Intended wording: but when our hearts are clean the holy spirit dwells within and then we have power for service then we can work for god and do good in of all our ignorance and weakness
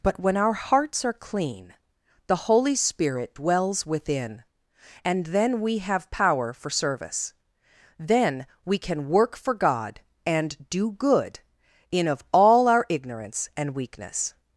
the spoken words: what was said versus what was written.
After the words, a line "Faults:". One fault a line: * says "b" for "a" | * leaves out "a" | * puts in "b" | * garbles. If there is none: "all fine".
but when our hearts are clean the holy spirit dwells within and then we have power for service then we can work for god and do good in of all our ignorance and weakness
Faults:
all fine